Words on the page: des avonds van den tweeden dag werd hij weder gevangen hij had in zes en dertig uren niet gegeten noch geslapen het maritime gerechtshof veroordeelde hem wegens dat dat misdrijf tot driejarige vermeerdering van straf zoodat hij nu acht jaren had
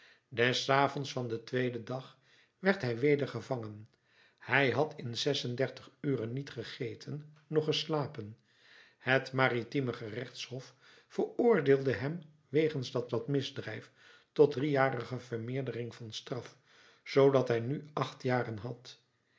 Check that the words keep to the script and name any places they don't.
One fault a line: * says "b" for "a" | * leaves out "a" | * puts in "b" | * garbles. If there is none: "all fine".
all fine